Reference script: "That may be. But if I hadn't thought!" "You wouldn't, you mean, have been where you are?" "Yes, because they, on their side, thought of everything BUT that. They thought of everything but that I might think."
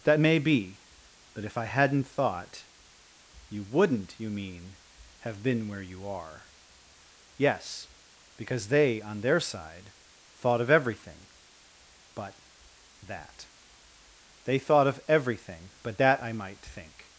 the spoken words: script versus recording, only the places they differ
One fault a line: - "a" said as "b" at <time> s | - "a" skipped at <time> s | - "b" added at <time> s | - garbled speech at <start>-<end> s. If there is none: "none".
none